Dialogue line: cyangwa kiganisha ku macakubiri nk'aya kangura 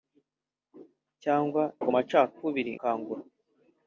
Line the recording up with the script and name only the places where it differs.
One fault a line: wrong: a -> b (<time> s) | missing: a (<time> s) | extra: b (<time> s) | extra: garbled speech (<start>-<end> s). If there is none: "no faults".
missing: kiganisha (1.6 s)
missing: nk'aya (2.7 s)